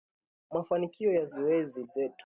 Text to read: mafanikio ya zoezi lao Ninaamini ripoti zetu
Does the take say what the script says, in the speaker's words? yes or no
no